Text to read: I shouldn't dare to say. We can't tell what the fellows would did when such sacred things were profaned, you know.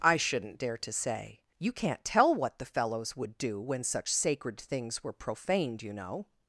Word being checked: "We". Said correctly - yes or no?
no